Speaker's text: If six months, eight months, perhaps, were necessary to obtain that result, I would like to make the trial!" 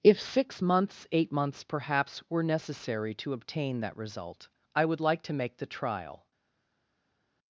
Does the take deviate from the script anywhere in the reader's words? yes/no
no